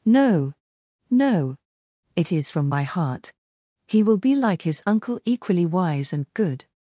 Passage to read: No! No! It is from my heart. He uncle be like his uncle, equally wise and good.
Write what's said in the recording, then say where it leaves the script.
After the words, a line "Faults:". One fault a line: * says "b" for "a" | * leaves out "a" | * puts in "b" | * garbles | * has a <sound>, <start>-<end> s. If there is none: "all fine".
No! No! It is from my heart. He will be like his uncle, equally wise and good.
Faults:
* says "will" for "uncle"